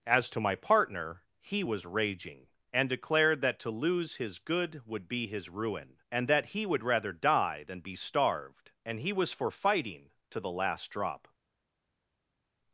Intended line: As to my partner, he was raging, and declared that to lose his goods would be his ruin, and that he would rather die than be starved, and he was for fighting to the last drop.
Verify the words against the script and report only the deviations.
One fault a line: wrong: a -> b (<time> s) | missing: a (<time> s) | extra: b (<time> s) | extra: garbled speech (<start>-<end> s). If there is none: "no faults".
wrong: goods -> good (4.4 s)